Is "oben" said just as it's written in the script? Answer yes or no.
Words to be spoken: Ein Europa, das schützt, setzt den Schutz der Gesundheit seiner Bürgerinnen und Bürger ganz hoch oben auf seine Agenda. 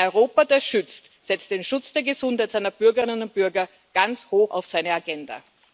no